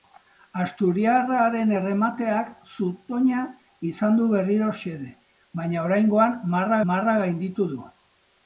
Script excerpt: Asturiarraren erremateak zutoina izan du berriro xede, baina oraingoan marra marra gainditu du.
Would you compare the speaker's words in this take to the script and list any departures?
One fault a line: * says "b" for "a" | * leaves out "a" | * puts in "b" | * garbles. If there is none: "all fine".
all fine